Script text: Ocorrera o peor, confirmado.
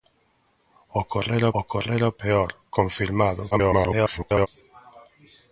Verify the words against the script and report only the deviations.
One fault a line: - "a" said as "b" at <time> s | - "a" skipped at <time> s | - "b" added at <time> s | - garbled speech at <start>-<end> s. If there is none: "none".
- "ocorrera" added at 1.6 s
- garbled speech at 3.5-4.5 s